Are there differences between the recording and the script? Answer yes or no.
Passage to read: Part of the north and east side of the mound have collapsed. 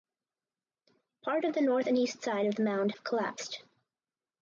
no